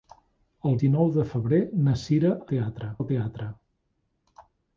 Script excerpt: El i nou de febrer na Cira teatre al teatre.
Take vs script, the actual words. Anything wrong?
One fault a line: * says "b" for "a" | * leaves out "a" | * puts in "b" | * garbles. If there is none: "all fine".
all fine